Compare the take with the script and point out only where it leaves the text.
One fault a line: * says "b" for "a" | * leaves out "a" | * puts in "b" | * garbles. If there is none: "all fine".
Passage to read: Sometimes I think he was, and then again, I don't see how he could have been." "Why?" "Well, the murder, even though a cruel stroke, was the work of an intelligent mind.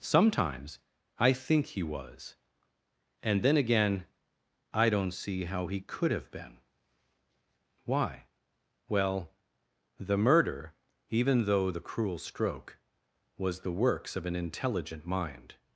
* says "the" for "a"
* says "works" for "work"